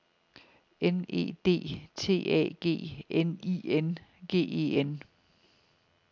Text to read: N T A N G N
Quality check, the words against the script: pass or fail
fail